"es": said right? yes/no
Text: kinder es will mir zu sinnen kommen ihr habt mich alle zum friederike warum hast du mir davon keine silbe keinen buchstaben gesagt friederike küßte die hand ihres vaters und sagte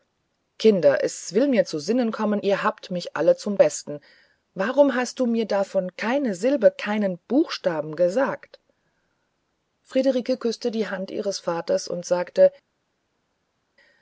yes